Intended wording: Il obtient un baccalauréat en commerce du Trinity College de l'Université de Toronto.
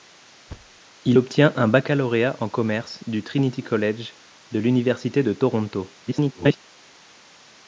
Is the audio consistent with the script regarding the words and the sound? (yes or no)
no